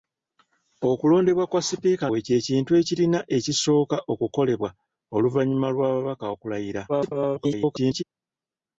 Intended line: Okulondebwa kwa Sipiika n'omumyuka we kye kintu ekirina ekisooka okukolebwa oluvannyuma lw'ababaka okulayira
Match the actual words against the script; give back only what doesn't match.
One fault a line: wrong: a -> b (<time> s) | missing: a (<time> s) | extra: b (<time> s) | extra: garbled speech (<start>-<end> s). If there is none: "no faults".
missing: n'omumyuka (2.0 s)
extra: garbled speech (6.9-8.0 s)